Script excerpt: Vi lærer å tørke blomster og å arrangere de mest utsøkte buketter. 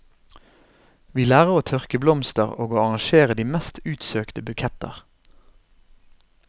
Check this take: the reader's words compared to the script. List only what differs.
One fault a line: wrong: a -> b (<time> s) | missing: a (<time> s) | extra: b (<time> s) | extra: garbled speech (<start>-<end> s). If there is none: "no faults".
no faults